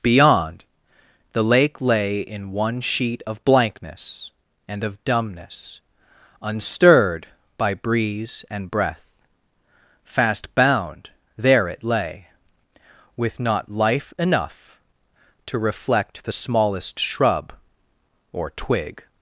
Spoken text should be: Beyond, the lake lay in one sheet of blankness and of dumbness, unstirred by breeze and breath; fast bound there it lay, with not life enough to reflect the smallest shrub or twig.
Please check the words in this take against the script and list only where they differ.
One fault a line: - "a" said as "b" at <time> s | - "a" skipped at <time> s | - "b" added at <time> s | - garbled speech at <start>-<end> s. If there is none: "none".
none